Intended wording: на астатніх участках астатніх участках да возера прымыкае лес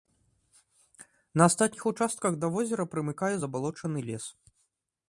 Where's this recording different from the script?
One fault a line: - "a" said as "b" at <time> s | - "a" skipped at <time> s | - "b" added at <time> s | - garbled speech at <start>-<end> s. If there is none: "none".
- "астатніх участках" skipped at 2.3 s
- "забалочаны" added at 3.4 s